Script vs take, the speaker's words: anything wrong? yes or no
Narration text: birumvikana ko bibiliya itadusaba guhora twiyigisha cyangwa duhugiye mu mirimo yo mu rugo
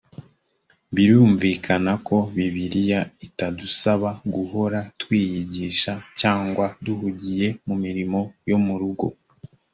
no